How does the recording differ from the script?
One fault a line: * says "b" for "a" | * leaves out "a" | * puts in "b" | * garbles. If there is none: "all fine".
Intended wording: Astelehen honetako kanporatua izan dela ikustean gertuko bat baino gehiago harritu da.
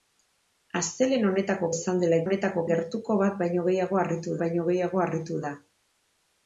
* leaves out "kanporatua"
* says "honetako" for "ikustean"
* puts in "baino gehiago harritu"